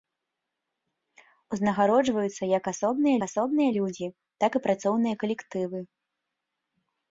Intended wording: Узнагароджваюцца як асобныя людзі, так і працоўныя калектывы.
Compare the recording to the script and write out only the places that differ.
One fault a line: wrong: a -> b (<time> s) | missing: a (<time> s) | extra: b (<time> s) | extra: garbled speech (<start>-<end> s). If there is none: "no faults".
extra: асобныя (3.3 s)